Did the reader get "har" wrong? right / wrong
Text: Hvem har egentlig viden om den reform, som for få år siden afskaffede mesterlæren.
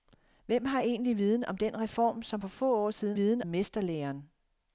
right